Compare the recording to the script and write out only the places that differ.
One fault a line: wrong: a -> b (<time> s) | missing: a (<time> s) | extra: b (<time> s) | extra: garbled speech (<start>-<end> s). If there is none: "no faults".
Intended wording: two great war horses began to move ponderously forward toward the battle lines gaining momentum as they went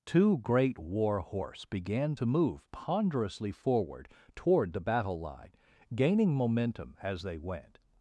wrong: horses -> horse (1.2 s)
wrong: lines -> line (5.2 s)